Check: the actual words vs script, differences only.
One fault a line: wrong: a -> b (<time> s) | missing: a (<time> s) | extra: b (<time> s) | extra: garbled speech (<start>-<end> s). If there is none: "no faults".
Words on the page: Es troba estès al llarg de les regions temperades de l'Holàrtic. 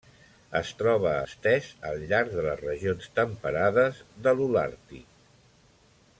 no faults